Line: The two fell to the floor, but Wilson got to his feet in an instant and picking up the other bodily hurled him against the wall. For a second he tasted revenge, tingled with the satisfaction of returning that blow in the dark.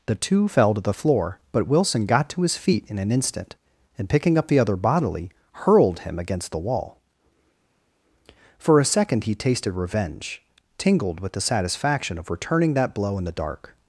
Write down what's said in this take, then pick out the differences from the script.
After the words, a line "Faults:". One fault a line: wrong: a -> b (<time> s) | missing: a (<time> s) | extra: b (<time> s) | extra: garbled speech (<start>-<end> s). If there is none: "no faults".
The two fell to the floor, but Wilson got to his feet in an instant and picking up the other bodily hurled him against the wall. For a second he tasted revenge, tingled with the satisfaction of returning that blow in the dark.
Faults:
no faults